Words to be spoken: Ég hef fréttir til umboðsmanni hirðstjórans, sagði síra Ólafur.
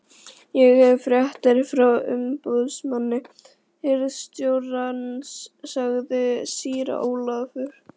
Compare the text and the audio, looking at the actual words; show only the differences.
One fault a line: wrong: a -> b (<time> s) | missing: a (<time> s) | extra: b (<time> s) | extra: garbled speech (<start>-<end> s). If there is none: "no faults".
wrong: til -> frá (1.7 s)